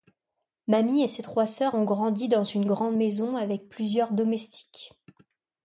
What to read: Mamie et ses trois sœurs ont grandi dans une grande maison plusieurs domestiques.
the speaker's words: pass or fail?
fail